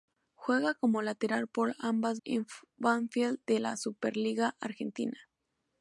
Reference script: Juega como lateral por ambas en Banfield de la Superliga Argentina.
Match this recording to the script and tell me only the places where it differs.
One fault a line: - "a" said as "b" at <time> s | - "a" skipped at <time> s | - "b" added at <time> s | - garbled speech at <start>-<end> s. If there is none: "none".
none